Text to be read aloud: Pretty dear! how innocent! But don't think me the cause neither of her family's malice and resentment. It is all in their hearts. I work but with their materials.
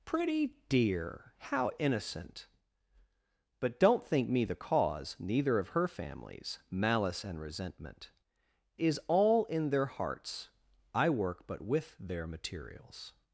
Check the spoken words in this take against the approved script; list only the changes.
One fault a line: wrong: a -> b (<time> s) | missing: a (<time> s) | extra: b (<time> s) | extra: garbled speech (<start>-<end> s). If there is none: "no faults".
missing: It (8.1 s)